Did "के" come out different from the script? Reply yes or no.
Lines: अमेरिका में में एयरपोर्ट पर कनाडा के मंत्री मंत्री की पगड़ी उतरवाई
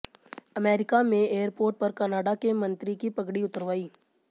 no